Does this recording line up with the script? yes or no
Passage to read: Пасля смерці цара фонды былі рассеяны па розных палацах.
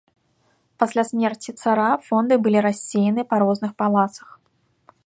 yes